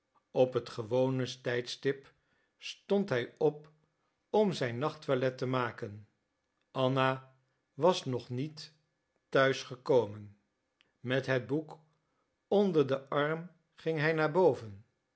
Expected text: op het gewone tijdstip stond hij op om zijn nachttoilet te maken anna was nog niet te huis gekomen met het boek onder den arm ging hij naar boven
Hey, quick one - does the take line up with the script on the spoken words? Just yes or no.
yes